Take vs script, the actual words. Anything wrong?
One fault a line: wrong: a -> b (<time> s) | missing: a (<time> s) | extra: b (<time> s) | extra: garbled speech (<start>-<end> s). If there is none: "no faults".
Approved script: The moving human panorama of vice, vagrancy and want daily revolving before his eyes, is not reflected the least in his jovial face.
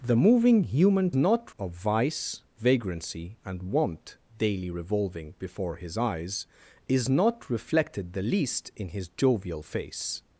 wrong: panorama -> not (1.1 s)